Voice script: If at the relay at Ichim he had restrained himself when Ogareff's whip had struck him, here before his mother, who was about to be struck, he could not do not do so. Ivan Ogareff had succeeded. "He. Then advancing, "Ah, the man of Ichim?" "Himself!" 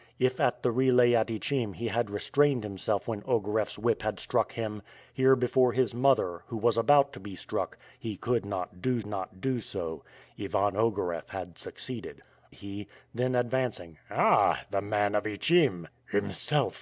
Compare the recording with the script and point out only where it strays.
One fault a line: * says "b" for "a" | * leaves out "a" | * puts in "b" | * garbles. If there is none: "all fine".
all fine